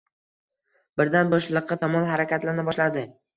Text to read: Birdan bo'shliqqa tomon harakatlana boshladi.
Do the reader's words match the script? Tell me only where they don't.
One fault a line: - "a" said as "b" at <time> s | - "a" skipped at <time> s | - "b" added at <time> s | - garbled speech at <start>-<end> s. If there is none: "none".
none